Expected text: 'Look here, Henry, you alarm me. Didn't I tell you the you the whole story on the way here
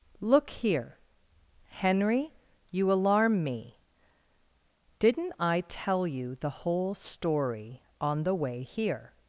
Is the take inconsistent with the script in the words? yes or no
yes